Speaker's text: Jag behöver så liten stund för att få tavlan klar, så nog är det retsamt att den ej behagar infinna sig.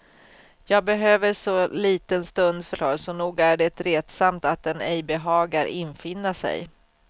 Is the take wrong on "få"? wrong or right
wrong